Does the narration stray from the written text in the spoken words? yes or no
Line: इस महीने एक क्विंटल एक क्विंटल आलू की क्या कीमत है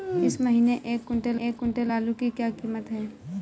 no